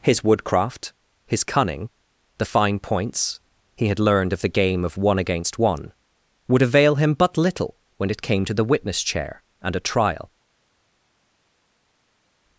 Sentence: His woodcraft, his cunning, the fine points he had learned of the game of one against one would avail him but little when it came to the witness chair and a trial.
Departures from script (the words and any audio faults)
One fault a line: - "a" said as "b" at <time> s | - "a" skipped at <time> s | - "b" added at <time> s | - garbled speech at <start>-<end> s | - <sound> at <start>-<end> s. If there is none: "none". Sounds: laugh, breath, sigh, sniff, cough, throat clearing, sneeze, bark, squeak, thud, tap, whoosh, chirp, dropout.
none